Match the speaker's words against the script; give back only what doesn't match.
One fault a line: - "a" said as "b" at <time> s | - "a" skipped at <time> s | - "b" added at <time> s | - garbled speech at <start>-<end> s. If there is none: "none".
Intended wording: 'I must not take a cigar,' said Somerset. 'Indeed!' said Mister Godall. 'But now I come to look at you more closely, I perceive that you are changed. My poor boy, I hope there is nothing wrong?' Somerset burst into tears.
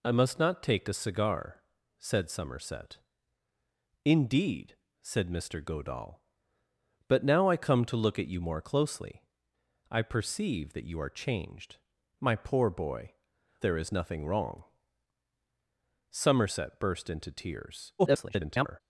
- "I hope" skipped at 13.1 s
- garbled speech at 18.0-18.8 s